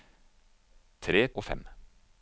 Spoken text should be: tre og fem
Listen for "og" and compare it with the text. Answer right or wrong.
right